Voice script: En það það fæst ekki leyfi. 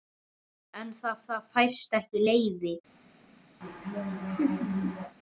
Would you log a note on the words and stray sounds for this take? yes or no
yes